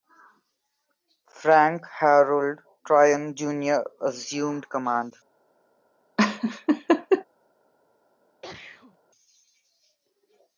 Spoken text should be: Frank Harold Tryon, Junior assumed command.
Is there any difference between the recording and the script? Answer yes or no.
no